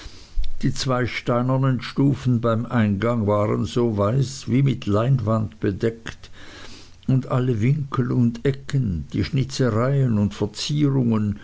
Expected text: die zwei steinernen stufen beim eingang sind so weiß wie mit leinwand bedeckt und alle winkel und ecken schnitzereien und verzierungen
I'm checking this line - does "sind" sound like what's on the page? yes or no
no